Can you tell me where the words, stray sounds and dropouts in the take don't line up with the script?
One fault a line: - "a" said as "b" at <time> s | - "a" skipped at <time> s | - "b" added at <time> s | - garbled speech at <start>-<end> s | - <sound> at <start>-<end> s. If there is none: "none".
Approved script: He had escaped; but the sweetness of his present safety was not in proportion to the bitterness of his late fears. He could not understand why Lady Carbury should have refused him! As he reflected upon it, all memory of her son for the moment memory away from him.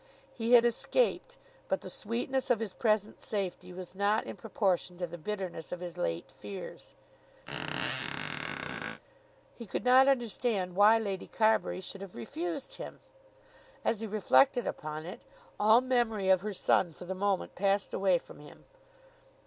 - squeak at 7.5-9.0 s
- "memory" said as "passed" at 17.5 s